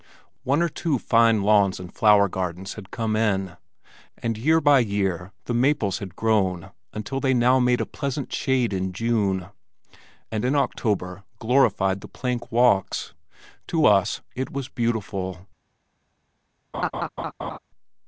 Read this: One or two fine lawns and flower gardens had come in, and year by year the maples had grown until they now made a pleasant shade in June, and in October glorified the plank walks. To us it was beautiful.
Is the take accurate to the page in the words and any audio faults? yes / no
no